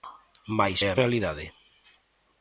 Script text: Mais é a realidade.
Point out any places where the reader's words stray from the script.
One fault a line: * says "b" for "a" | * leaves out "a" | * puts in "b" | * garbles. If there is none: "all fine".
all fine